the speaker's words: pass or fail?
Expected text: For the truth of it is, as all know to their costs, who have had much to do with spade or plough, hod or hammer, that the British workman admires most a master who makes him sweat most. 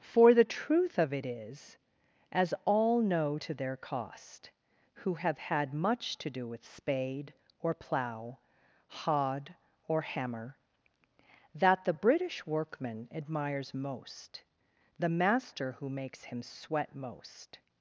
fail